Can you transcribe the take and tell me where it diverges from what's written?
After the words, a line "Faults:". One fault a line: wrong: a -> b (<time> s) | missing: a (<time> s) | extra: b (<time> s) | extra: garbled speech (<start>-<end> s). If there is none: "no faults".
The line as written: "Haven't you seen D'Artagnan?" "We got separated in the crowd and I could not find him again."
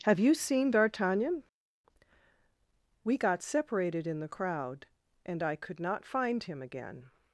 "Have you seen D'Artagnan?" "We got separated in the crowd and I could not find him again."
Faults:
wrong: Haven't -> Have (0.0 s)